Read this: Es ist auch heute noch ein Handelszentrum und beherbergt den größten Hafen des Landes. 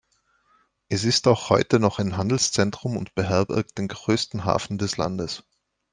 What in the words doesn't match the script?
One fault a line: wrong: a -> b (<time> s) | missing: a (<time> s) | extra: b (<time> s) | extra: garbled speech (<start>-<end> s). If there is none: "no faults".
no faults